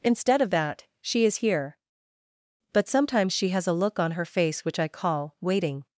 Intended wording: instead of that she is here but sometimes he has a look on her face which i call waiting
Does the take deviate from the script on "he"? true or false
true